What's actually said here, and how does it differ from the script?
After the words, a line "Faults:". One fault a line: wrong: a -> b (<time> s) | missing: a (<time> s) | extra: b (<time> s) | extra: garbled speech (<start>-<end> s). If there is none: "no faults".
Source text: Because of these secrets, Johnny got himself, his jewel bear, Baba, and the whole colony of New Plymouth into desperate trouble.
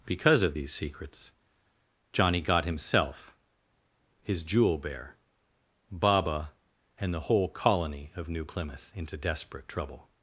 Because of these secrets, Johnny got himself, his jewel bear, Baba, and the whole colony of New Plymouth into desperate trouble.
Faults:
no faults